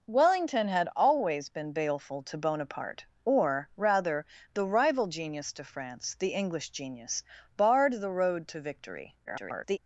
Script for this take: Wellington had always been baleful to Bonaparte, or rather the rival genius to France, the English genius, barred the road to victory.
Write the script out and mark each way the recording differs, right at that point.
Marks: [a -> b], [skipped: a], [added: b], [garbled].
Wellington had always been baleful to Bonaparte, or rather the rival genius to France, the English genius, barred the road to victory. [garbled]